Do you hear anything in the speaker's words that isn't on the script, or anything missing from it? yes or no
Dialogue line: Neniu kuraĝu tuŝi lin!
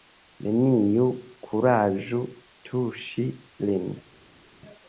no